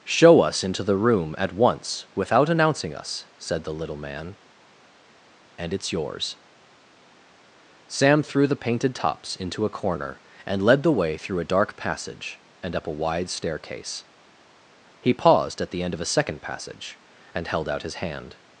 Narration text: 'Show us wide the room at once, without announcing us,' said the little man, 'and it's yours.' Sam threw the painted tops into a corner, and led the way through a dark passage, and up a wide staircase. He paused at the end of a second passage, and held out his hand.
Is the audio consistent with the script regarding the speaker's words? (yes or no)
no